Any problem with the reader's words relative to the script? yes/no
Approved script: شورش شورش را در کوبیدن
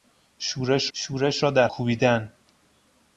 no